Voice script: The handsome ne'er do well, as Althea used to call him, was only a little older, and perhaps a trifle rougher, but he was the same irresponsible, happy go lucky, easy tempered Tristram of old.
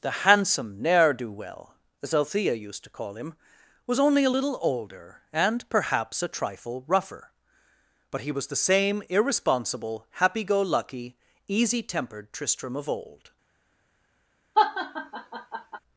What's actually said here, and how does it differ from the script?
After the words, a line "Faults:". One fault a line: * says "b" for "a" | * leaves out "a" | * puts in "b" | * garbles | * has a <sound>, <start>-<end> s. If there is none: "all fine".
The handsome ne'er do well, as Althea used to call him, was only a little older, and perhaps a trifle rougher, but he was the same irresponsible, happy go lucky, easy tempered Tristram of old.
Faults:
* has a laugh, 14.5-15.8 s